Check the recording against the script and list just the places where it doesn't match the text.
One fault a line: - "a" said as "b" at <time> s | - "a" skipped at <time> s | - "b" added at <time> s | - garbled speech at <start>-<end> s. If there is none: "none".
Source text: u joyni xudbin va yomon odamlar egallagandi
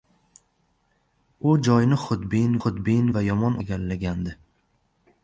- "xudbin" added at 2.6 s
- "odamlar" skipped at 3.6 s